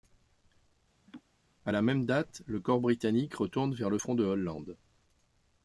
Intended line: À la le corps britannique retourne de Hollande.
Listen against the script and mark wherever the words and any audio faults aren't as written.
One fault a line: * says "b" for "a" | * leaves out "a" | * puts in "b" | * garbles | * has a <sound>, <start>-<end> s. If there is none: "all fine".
* has a laugh, 1.1-1.2 s
* puts in "même date"
* puts in "vers le front"